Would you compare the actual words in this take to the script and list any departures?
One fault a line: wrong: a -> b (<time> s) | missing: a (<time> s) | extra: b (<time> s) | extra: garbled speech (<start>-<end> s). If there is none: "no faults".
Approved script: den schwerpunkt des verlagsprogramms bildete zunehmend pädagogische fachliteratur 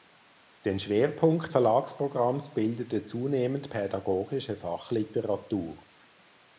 missing: des (1.5 s)